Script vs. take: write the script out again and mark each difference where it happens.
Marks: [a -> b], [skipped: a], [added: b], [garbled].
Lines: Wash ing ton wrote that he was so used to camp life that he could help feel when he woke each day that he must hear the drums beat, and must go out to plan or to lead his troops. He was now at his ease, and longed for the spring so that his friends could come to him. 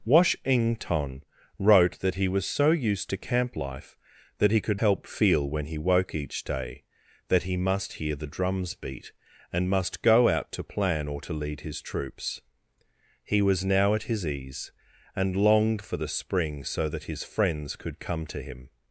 Wash ing ton wrote that he was so used to camp life that he could help feel when he woke each day that he must hear the drums beat, and must go out to plan or to lead his troops. He was now at his ease, and longed for the spring so that his friends could come to him.